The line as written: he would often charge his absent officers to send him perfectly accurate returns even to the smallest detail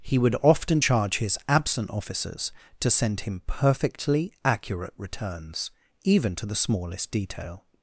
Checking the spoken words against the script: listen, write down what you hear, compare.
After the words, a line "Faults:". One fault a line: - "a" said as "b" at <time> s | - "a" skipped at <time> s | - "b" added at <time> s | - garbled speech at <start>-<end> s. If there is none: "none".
he would often charge his absent officers to send him perfectly accurate returns even to the smallest detail
Faults:
none